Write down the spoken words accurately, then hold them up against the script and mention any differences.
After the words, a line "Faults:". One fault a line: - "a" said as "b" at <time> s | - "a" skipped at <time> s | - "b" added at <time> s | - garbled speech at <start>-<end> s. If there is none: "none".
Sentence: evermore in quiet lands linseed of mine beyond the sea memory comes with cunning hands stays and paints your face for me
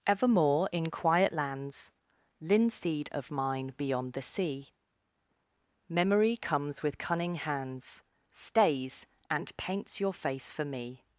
evermore in quiet lands linseed of mine beyond the sea memory comes with cunning hands stays and paints your face for me
Faults:
none